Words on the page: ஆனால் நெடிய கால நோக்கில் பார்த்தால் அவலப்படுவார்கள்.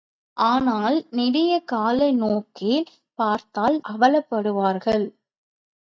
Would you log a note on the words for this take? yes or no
no